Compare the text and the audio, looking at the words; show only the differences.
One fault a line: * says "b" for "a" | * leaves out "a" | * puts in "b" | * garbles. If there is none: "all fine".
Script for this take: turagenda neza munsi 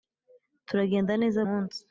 all fine